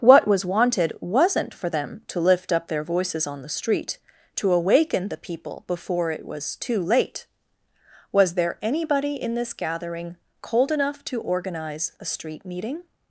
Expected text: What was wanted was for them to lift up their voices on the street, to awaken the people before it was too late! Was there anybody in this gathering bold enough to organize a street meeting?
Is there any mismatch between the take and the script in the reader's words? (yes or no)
yes